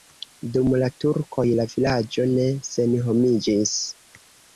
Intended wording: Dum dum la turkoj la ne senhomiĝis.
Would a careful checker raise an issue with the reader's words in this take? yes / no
yes